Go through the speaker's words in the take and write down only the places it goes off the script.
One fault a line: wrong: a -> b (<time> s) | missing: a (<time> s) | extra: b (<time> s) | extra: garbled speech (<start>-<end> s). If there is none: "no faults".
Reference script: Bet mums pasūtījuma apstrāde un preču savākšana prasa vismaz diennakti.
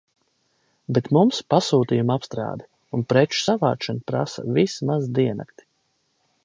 no faults